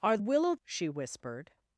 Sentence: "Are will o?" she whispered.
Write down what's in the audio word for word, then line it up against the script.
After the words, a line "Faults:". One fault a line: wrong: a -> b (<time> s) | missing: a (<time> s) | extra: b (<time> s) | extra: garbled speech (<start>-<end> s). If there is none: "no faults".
"Are will o?" she whispered.
Faults:
no faults